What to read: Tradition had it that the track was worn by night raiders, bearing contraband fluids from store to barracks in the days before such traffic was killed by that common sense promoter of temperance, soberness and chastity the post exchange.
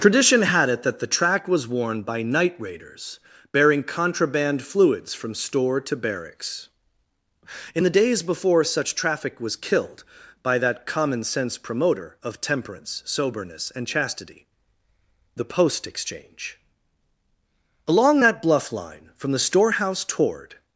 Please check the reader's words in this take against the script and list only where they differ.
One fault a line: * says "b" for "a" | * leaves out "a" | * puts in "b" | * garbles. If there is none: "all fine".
* puts in "Along that bluff line from the storehouse toward"